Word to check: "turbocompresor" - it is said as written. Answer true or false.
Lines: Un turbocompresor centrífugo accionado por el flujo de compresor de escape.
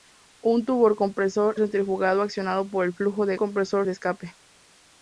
true